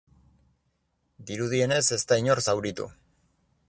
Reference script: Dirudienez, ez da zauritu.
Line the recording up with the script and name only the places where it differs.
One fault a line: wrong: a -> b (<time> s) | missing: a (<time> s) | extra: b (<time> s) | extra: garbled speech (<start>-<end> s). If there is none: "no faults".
extra: inor (2.2 s)